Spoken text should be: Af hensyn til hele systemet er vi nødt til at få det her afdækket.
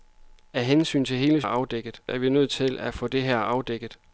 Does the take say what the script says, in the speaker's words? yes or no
no